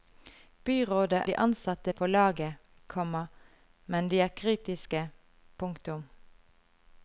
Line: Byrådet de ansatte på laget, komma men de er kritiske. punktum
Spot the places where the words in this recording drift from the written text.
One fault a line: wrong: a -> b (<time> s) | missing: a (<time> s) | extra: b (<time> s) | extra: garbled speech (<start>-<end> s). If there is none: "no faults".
no faults